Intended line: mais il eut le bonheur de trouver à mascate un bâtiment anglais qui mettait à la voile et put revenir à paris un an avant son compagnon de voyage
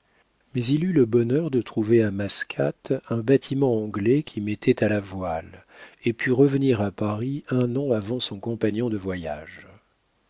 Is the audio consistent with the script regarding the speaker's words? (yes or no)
yes